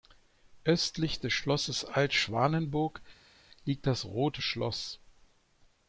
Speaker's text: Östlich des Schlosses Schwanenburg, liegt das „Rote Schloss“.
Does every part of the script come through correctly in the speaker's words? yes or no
no